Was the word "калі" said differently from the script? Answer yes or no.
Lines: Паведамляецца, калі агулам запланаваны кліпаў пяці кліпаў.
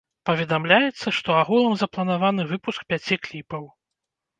yes